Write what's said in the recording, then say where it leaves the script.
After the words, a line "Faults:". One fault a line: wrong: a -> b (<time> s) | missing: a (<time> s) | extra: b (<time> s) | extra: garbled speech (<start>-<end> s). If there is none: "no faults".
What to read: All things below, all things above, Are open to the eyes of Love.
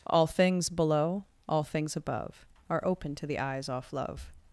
All things below, all things above, Are open to the eyes off Love.
Faults:
wrong: of -> off (3.7 s)